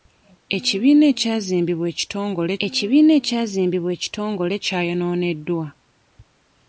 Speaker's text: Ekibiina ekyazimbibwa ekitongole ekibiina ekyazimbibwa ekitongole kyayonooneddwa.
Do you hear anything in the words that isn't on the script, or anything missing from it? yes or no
no